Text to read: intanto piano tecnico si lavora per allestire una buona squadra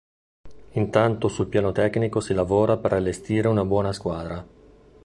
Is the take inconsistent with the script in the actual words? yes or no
yes